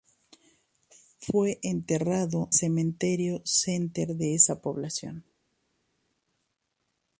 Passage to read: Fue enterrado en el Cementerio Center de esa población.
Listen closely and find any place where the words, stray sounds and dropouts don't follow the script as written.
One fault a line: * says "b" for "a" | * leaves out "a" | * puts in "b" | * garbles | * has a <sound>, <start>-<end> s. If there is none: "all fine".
* leaves out "en el"